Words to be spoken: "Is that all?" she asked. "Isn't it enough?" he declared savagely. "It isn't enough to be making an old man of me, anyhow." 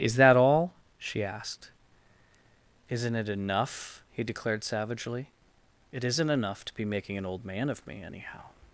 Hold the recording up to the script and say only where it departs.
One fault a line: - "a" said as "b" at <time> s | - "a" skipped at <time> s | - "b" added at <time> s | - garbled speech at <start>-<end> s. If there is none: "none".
none